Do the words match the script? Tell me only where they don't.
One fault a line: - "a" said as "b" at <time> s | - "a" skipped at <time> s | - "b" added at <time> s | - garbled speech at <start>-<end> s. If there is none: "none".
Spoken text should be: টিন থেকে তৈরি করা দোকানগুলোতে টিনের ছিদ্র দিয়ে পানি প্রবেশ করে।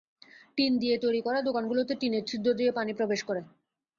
- "থেকে" said as "দিয়ে" at 0.8 s